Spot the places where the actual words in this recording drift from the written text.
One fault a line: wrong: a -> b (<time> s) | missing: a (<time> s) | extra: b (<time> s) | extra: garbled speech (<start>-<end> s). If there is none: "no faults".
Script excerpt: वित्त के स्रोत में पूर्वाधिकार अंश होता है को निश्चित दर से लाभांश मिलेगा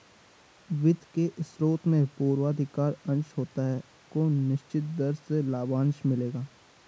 no faults